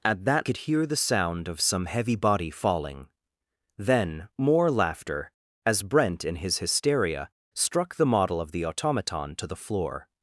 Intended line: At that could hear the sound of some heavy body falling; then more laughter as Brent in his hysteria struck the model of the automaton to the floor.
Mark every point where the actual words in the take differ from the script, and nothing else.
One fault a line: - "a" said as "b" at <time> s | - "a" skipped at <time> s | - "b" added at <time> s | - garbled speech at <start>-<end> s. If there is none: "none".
none